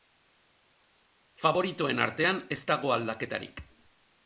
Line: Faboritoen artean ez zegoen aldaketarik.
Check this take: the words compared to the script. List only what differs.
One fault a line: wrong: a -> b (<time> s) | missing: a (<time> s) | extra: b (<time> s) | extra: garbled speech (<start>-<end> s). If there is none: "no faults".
wrong: zegoen -> dago (2.7 s)